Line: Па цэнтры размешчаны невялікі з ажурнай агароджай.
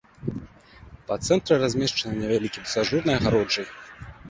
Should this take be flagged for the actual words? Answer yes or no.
no